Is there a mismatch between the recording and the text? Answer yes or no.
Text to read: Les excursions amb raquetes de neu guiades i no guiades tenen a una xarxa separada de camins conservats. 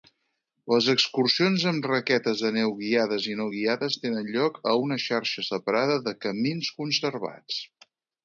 yes